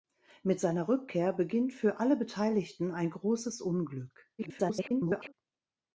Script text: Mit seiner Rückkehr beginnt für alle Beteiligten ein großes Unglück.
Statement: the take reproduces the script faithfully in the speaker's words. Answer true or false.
false